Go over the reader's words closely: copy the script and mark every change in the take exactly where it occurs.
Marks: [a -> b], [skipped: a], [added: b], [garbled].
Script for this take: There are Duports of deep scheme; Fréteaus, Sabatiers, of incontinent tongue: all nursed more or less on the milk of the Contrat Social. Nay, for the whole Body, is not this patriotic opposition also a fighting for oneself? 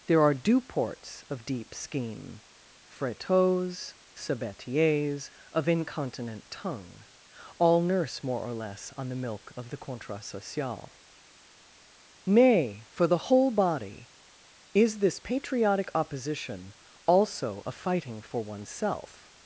There are Duports of deep scheme; Fréteaus, Sabatiers, of incontinent tongue: all [nursed -> nurse] more or less on the milk of the Contrat Social. Nay, for the whole Body, is [skipped: not] this patriotic opposition also a fighting for oneself?